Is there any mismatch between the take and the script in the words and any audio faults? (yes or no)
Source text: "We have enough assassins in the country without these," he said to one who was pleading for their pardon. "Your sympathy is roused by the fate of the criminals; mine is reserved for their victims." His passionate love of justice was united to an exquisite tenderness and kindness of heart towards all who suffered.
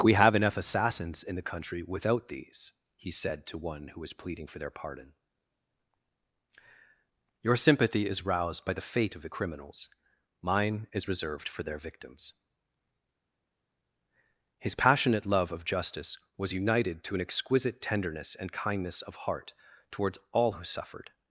no